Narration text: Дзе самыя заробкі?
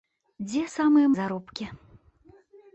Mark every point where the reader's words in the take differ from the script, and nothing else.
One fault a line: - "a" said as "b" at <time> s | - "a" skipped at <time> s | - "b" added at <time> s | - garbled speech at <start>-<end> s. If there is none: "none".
none